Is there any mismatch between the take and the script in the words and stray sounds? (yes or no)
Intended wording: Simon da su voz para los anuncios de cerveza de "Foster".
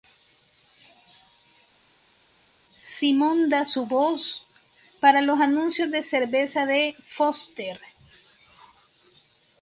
no